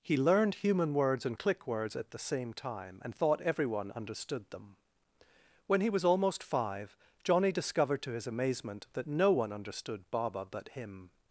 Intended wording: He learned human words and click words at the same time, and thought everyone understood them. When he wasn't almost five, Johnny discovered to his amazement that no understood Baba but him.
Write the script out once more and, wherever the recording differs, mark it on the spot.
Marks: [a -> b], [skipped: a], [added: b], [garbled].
He learned human words and click words at the same time, and thought everyone understood them. When he [wasn't -> was] almost five, Johnny discovered to his amazement that no [added: one] understood Baba but him.